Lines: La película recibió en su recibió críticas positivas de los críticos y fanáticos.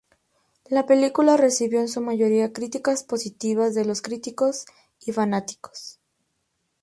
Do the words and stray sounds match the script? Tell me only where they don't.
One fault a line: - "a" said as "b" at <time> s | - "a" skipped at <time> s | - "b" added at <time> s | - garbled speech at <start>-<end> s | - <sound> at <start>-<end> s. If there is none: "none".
- "recibió" said as "mayoría" at 2.0 s